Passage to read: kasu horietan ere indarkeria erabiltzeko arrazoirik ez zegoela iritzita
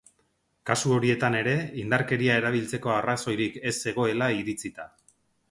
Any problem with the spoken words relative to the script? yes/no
no